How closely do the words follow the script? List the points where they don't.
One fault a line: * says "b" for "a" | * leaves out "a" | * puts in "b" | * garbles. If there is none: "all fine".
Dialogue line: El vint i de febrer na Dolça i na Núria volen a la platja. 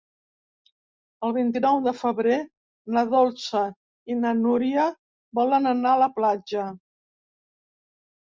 * puts in "nou"
* puts in "anar"